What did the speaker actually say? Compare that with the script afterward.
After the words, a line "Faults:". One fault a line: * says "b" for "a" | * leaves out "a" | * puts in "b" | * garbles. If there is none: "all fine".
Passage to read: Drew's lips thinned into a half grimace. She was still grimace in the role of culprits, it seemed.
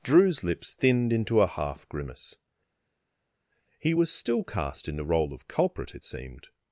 Drew's lips thinned into a half grimace. He was still cast in the role of culprit, it seemed.
Faults:
* says "He" for "She"
* says "cast" for "grimace"
* says "culprit" for "culprits"